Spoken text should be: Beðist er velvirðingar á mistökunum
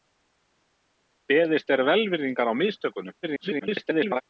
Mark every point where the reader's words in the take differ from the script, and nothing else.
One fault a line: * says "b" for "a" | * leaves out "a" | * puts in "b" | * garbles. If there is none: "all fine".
* garbles